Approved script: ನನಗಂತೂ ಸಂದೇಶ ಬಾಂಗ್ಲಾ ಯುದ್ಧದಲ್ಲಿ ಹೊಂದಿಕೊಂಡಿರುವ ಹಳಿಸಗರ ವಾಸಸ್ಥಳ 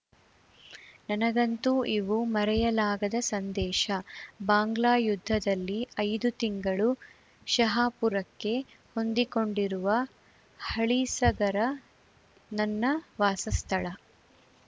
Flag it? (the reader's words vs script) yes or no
yes